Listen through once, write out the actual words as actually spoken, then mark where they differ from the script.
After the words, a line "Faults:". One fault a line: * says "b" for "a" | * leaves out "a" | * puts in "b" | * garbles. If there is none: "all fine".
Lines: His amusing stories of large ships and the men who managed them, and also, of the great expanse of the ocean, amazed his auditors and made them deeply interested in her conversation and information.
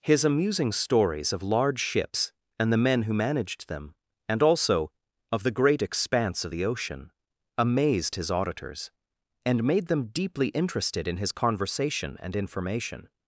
His amusing stories of large ships and the men who managed them, and also, of the great expanse of the ocean, amazed his auditors and made them deeply interested in his conversation and information.
Faults:
* says "his" for "her"